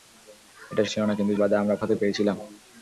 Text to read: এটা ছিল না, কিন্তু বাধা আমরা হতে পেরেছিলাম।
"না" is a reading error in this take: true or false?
false